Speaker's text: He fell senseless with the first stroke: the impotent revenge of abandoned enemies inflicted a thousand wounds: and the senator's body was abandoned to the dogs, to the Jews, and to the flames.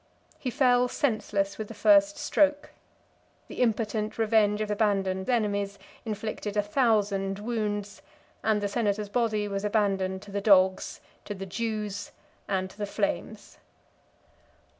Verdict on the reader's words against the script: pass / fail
pass